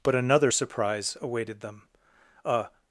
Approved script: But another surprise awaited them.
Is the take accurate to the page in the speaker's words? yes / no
no